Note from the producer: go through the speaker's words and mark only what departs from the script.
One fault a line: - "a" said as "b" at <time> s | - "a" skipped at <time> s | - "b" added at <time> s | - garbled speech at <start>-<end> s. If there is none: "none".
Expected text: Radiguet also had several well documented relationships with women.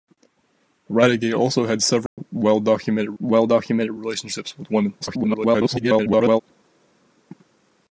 - "well documented" added at 3.2 s
- garbled speech at 5.0-6.4 s